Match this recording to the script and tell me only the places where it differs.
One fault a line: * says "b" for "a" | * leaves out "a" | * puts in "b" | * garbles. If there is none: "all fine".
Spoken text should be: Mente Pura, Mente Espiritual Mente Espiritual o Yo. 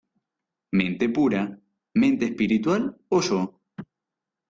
* leaves out "Mente Espiritual"